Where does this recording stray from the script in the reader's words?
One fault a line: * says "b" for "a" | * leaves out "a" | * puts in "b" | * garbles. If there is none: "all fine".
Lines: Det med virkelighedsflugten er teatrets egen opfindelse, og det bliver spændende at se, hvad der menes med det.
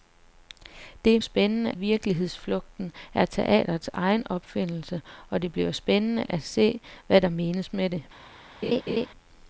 * says "spændende" for "med"